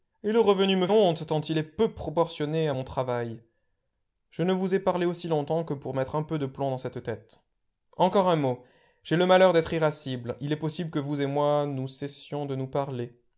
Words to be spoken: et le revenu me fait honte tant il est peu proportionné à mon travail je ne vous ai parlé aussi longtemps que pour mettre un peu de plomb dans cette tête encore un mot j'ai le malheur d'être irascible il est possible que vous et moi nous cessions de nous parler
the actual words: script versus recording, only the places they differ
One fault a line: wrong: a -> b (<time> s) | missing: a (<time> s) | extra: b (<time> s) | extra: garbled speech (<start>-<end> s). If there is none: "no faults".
missing: fait (0.9 s)